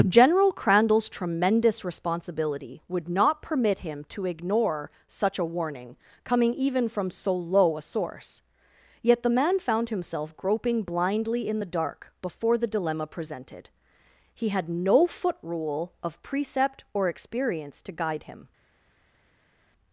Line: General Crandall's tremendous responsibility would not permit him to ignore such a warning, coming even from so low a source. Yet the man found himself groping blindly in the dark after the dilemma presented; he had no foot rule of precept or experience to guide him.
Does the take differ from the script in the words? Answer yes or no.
yes